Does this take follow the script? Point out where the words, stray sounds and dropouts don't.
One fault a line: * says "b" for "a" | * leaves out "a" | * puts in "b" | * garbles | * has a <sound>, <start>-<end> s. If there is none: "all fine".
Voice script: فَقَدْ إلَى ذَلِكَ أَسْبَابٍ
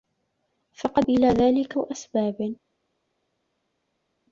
all fine